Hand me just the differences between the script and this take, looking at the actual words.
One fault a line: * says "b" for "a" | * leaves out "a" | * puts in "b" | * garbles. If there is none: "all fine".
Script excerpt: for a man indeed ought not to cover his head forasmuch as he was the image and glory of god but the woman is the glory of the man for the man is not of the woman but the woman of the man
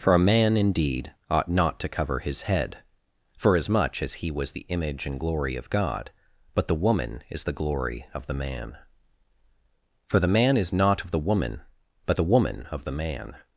all fine